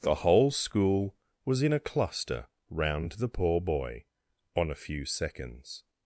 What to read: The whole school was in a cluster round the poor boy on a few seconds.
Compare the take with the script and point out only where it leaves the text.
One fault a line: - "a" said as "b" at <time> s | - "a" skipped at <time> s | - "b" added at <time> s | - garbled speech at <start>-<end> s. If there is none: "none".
none